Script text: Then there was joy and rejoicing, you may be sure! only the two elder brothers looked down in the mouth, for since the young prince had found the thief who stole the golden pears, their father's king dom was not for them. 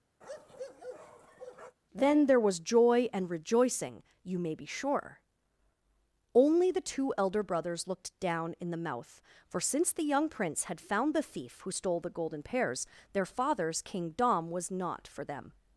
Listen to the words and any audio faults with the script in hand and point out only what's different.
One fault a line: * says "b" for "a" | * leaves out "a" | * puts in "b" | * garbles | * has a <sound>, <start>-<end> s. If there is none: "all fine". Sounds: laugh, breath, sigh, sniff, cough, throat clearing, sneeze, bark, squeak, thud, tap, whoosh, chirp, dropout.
* has a bark, 0.2-1.8 s